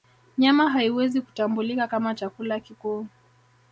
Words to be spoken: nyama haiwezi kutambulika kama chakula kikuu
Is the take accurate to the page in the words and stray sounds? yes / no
yes